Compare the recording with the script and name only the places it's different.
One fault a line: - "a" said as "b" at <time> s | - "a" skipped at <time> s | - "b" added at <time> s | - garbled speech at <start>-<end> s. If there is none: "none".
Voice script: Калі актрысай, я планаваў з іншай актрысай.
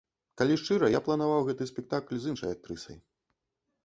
- "актрысай" said as "шчыра" at 0.6 s
- "гэты спектакль" added at 1.5 s